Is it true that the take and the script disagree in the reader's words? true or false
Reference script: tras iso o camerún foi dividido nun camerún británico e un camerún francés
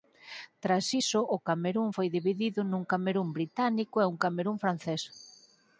false